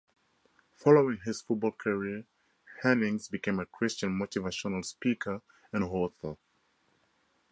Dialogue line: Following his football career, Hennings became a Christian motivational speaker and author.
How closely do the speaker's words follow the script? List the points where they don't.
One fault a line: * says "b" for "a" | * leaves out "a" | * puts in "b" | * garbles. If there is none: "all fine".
all fine